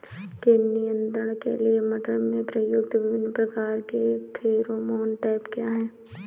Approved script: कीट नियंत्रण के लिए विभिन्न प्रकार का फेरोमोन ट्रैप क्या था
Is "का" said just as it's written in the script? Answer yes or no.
no